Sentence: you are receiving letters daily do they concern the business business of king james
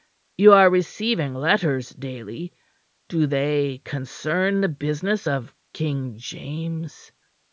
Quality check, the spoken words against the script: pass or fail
fail